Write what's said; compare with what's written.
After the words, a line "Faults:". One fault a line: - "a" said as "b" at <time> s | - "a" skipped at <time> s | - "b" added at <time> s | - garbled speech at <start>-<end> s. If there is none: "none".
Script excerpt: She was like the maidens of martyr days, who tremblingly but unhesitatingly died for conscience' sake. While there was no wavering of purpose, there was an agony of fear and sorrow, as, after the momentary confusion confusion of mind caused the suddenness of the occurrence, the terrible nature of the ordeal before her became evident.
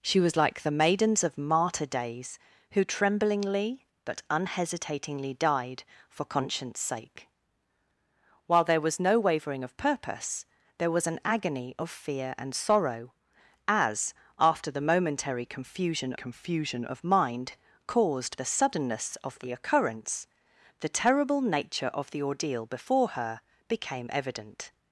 She was like the maidens of martyr days, who tremblingly but unhesitatingly died for conscience' sake. While there was no wavering of purpose, there was an agony of fear and sorrow, as, after the momentary confusion confusion of mind caused the suddenness of the occurrence, the terrible nature of the ordeal before her became evident.
Faults:
none